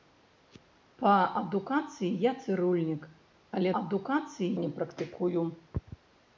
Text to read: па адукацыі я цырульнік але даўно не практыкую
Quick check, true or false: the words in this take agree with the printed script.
false